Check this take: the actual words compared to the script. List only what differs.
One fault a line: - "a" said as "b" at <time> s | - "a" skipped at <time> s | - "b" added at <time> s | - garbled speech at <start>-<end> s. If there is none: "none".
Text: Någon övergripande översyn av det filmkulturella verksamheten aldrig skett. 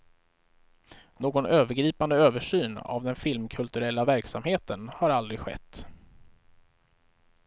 - "det" said as "den" at 3.0 s
- "har" added at 4.9 s